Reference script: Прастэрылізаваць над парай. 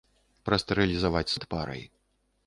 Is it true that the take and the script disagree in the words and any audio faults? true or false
false